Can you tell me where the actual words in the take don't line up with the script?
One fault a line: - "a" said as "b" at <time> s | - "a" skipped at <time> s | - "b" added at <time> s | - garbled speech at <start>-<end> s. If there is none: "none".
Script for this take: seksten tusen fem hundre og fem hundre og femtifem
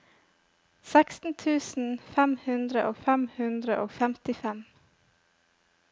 none